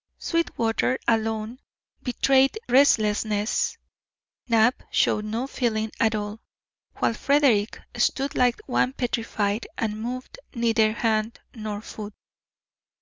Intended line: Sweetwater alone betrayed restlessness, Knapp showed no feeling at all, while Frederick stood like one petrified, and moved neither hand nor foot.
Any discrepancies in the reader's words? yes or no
no